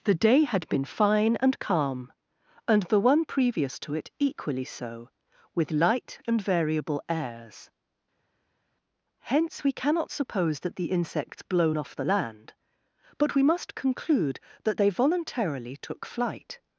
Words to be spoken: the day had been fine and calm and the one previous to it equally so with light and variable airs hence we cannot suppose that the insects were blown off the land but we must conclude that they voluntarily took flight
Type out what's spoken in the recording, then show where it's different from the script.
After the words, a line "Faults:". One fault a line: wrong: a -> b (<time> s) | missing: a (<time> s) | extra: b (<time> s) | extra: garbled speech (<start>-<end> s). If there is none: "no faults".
the day had been fine and calm and the one previous to it equally so with light and variable airs hence we cannot suppose that the insects blown off the land but we must conclude that they voluntarily took flight
Faults:
missing: were (11.4 s)